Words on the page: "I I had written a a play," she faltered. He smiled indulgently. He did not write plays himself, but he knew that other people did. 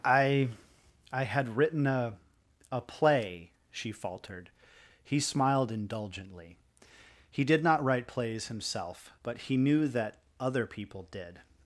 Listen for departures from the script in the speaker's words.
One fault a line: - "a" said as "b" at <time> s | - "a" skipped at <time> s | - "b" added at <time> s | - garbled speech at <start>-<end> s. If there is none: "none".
none